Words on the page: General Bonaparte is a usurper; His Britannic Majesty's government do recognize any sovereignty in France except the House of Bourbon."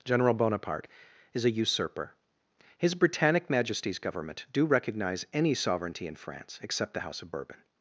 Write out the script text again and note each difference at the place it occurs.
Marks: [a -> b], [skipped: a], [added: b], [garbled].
General Bonaparte is a usurper; His Britannic Majesty's government do recognize any sovereignty in France except the House of Bourbon."